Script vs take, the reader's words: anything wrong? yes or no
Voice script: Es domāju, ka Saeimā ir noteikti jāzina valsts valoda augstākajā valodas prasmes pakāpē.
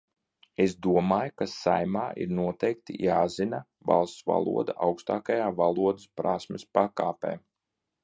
no